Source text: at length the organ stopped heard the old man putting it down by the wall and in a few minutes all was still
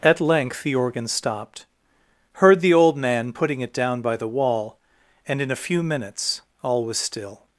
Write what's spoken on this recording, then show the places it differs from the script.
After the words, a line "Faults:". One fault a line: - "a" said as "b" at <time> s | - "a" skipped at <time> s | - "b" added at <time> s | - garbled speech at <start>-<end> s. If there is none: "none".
at length the organ stopped heard the old man putting it down by the wall and in a few minutes all was still
Faults:
none